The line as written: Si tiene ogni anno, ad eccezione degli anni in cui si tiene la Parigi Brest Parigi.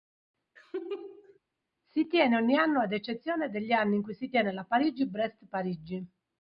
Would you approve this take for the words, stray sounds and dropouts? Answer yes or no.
no